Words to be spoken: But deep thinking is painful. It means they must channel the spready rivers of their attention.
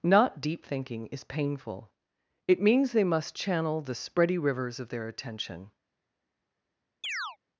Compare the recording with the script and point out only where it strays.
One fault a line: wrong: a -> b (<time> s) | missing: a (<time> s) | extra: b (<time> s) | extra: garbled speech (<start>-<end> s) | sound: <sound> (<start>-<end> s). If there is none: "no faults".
wrong: But -> Not (0.0 s)
sound: chirp (7.0-7.4 s)